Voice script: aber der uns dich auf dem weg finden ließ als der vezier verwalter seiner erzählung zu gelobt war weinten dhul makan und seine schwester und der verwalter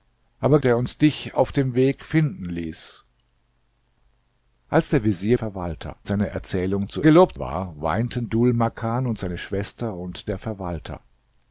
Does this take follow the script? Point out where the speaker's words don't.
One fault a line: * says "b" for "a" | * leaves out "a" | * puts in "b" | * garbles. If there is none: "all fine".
all fine